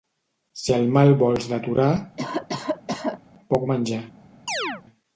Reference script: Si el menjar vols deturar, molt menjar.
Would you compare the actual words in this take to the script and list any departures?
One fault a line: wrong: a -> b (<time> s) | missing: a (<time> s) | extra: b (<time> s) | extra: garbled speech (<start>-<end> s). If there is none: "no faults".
wrong: menjar -> mal (0.9 s)
wrong: molt -> poc (3.5 s)